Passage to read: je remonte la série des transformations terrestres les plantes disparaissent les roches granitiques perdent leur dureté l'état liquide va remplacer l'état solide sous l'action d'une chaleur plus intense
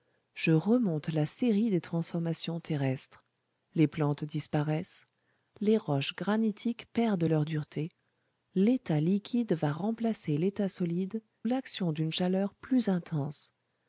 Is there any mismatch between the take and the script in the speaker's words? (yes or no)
yes